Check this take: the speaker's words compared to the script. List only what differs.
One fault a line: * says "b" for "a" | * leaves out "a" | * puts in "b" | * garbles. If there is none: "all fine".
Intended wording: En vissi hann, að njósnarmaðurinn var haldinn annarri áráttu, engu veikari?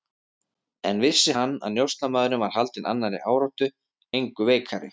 all fine